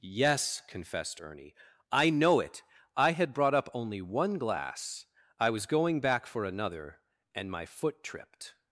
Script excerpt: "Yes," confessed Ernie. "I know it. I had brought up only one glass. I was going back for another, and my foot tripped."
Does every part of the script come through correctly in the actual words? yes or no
yes